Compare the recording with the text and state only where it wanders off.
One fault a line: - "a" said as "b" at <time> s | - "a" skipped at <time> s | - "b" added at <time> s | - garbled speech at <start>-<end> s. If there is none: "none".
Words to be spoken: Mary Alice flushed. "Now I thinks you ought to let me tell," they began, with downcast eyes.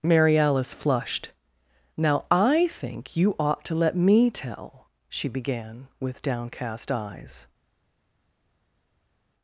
- "thinks" said as "think" at 2.7 s
- "they" said as "she" at 5.1 s